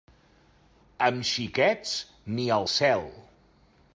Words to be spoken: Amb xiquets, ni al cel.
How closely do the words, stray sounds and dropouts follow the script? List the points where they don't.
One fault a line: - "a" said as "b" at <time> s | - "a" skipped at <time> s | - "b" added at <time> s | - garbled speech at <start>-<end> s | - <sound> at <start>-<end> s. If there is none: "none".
none